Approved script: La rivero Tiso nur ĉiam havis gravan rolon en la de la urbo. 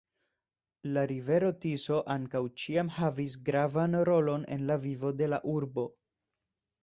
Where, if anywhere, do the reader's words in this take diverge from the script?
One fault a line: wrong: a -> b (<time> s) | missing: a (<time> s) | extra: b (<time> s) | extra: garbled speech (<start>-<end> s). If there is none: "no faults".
wrong: nur -> ankaŭ (2.1 s)
extra: vivo (4.9 s)